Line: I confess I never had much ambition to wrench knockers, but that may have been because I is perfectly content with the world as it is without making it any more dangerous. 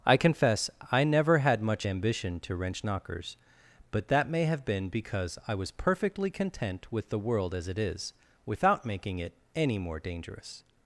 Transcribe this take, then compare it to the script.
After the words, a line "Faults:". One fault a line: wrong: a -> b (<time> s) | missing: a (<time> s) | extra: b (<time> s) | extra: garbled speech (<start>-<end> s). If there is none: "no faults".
I confess I never had much ambition to wrench knockers, but that may have been because I was perfectly content with the world as it is without making it any more dangerous.
Faults:
wrong: is -> was (5.5 s)